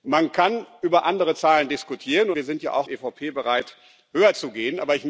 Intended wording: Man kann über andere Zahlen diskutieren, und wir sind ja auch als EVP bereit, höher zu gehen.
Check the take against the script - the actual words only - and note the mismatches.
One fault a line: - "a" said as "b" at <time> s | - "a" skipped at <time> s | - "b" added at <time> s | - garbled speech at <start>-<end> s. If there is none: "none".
- "und" skipped at 2.3 s
- "als" skipped at 2.9 s